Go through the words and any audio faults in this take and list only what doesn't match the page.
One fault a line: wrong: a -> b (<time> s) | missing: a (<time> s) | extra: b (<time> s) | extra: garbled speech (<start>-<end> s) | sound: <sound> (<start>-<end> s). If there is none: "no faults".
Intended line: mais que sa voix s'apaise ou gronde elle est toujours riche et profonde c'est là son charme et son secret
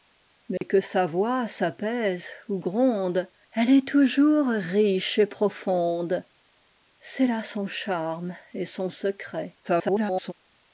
sound: dropout (0.6-0.6 s)
extra: garbled speech (9.6-10.3 s)